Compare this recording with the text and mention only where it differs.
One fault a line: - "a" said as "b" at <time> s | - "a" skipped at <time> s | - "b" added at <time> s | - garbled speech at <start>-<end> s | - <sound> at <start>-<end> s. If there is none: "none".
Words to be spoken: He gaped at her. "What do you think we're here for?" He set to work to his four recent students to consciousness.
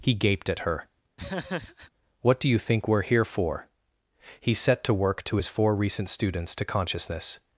- laugh at 1.2-1.9 s